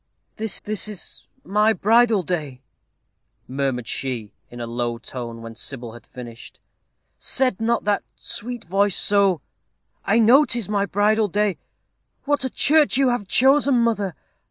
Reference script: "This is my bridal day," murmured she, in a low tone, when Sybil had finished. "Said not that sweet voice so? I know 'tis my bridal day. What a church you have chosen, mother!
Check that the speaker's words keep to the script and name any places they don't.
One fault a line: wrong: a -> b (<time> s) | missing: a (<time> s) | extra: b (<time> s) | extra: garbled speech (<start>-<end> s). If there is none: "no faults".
extra: this (0.6 s)